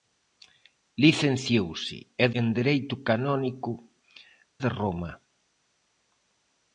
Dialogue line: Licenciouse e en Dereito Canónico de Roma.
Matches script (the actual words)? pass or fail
pass